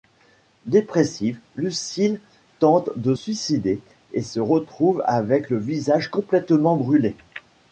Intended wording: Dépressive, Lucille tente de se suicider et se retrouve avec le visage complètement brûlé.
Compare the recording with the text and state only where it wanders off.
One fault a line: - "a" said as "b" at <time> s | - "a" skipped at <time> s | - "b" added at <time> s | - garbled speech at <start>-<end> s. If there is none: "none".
- "se" skipped at 3.1 s